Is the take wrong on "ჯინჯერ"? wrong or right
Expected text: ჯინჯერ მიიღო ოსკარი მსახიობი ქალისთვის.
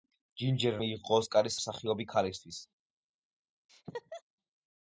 right